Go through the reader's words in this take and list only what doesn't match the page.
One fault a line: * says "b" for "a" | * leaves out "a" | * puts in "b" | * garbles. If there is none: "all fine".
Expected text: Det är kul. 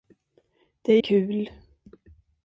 all fine